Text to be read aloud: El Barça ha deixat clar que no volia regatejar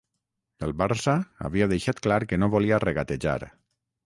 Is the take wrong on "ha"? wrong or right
wrong